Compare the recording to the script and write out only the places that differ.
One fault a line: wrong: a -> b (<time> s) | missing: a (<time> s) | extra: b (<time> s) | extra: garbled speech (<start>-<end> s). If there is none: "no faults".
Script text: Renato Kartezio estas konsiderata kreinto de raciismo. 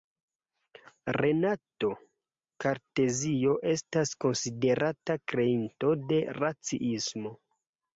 no faults